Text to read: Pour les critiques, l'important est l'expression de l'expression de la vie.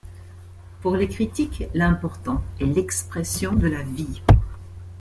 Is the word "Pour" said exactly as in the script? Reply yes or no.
yes